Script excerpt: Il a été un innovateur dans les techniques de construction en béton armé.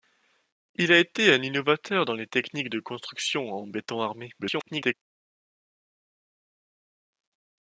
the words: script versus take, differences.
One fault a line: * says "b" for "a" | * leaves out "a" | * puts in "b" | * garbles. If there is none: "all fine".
* garbles